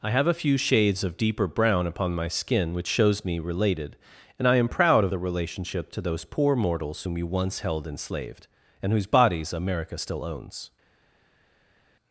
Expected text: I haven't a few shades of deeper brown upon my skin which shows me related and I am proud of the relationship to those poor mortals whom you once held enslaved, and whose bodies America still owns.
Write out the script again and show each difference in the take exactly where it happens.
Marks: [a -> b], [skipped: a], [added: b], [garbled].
I [haven't -> have] a few shades of deeper brown upon my skin which shows me related and I am proud of the relationship to those poor mortals whom you once held enslaved, and whose bodies America still owns.